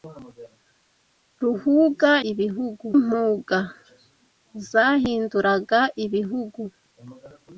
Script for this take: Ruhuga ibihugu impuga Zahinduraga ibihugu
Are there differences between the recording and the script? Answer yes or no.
no